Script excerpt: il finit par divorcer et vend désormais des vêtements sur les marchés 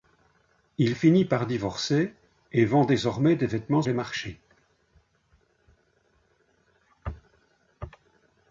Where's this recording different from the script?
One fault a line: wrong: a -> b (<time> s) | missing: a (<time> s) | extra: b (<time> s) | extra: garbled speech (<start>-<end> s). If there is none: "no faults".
missing: sur (3.8 s)